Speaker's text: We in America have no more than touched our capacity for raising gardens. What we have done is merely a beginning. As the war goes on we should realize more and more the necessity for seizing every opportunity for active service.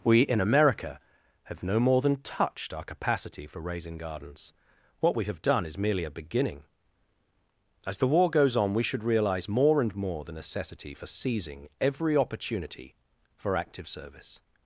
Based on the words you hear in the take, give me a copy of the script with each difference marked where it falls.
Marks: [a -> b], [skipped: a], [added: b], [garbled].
We in America have no more than touched our capacity for raising gardens. What we have done is merely a beginning. As the war goes on we should realize more and more the necessity for seizing every opportunity for active service.